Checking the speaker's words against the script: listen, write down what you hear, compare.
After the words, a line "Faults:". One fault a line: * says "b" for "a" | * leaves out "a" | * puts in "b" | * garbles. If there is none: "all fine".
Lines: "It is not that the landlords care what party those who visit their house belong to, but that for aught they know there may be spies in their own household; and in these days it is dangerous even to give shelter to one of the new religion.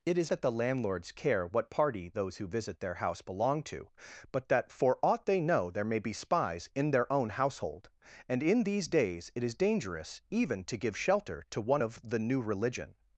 "It is that the landlords care what party those who visit their house belong to, but that for aught they know there may be spies in their own household; and in these days it is dangerous even to give shelter to one of the new religion.
Faults:
* leaves out "not"